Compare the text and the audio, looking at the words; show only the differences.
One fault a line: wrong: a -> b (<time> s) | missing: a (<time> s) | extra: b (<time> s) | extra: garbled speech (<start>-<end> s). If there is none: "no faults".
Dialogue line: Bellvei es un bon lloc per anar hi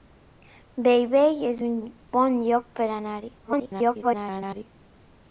extra: garbled speech (3.4-4.7 s)